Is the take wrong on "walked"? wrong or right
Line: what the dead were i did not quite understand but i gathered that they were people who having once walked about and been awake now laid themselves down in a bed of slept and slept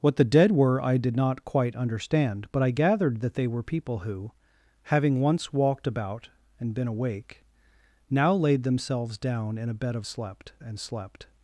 right